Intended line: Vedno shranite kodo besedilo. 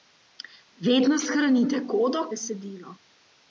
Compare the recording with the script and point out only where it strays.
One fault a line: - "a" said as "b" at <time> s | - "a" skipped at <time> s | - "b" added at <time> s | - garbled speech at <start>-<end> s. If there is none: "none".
none